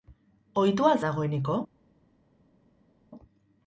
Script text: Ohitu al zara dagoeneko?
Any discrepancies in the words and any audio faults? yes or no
yes